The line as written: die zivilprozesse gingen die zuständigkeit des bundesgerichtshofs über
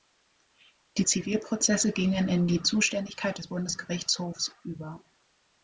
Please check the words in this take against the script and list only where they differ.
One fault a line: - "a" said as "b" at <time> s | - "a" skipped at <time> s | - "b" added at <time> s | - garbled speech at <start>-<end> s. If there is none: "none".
- "in" added at 2.3 s